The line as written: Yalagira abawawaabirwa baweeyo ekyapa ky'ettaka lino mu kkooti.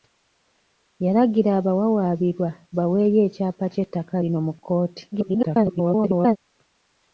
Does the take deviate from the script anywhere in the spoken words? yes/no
yes